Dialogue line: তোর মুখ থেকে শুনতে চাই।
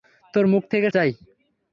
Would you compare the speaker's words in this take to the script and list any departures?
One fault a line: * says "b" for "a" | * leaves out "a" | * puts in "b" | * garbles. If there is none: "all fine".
* leaves out "শুনতে"